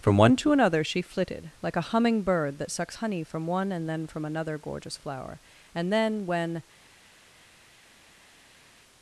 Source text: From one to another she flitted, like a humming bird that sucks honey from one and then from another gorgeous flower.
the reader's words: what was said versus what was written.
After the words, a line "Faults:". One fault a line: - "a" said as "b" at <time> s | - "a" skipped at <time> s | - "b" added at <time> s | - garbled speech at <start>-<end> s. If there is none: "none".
From one to another she flitted, like a humming bird that sucks honey from one and then from another gorgeous flower. And then, when
Faults:
- "And then when" added at 5.7 s